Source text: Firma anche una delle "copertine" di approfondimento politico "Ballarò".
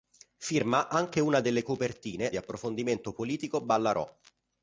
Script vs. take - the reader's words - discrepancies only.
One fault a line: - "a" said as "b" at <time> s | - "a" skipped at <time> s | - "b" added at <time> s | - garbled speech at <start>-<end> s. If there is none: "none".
none